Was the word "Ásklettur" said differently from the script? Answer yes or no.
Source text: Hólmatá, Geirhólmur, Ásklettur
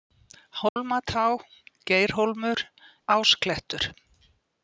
no